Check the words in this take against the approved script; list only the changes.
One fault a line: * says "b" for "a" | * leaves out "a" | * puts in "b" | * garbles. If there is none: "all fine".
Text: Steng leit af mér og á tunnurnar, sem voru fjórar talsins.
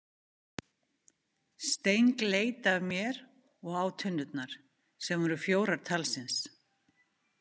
all fine